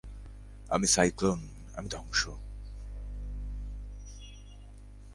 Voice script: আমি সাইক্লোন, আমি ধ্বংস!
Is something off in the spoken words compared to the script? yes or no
no